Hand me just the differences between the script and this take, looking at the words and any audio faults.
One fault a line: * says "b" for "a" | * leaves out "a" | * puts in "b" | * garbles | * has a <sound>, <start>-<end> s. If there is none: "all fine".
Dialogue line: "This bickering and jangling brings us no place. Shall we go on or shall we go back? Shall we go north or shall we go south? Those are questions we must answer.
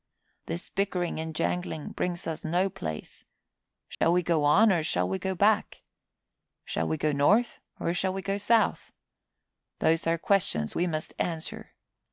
* has a dropout, 3.9-4.0 s